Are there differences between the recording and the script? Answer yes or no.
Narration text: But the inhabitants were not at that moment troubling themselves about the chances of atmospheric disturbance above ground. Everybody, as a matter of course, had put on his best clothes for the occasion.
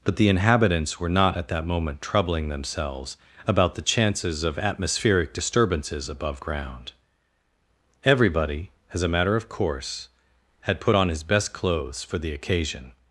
yes